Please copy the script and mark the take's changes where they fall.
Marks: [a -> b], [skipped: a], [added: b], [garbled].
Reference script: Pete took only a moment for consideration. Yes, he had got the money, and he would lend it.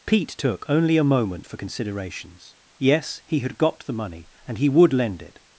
Pete took only a moment for [consideration. -> considerations] Yes, he had got the money, and he would lend it.